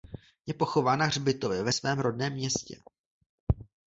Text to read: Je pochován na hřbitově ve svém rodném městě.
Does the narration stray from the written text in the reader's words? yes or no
no